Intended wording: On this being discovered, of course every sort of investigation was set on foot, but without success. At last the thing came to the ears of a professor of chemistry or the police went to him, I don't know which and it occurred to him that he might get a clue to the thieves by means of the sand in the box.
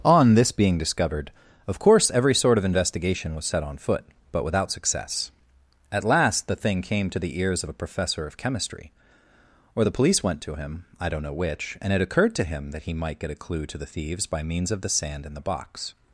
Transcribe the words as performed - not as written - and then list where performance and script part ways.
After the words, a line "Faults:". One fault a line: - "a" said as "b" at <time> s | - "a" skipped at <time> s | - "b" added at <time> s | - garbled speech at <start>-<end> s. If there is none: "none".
On this being discovered, of course every sort of investigation was set on foot, but without success. At last the thing came to the ears of a professor of chemistry or the police went to him, I don't know which and it occurred to him that he might get a clue to the thieves by means of the sand in the box.
Faults:
none